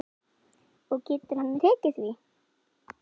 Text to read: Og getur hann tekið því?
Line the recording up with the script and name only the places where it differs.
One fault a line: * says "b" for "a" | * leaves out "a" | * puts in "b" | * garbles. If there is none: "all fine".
all fine